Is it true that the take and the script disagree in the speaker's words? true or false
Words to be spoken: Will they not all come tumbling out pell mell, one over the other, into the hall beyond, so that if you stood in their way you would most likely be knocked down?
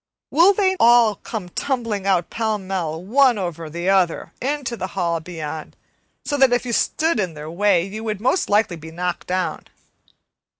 true